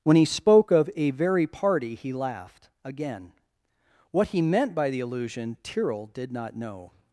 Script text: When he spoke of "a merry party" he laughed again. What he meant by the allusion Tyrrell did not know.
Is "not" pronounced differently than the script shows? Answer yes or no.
no